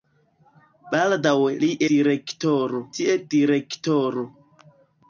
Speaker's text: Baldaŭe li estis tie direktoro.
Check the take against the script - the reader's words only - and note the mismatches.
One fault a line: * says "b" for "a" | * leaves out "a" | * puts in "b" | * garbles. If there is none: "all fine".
* says "direktoro" for "estis"